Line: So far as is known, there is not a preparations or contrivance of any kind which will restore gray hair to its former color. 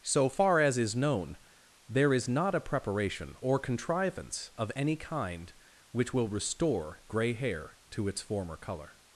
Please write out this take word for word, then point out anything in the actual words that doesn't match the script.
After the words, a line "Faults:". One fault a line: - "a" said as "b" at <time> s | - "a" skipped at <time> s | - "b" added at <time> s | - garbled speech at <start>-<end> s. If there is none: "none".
So far as is known, there is not a preparation or contrivance of any kind which will restore gray hair to its former color.
Faults:
- "preparations" said as "preparation" at 2.6 s